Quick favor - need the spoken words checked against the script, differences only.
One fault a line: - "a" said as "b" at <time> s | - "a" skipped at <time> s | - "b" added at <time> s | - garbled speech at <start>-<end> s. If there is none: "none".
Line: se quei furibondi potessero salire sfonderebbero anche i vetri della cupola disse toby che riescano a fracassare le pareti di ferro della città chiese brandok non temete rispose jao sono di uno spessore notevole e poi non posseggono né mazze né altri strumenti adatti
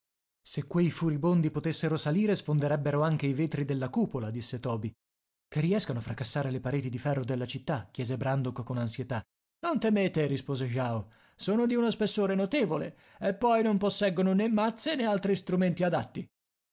- "con ansietà" added at 8.6 s